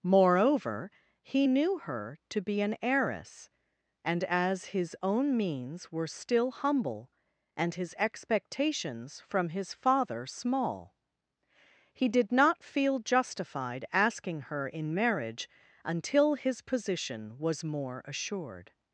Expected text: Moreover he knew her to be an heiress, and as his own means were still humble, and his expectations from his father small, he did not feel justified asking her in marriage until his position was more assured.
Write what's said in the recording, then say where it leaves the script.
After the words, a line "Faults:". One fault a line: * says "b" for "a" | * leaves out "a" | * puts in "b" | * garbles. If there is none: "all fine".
Moreover he knew her to be an heiress, and as his own means were still humble, and his expectations from his father small, he did not feel justified asking her in marriage until his position was more assured.
Faults:
all fine